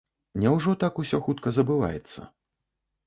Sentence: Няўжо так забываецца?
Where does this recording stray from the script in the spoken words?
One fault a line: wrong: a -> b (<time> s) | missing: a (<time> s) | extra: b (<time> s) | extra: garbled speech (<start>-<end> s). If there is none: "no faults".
extra: усё хутка (1.0 s)